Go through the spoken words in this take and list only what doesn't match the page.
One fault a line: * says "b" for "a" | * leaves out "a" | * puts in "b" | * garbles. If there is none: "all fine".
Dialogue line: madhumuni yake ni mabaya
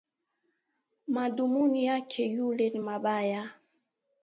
* puts in "yule"